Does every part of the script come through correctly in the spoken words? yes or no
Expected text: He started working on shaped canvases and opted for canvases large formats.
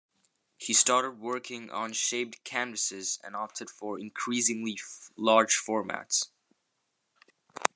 no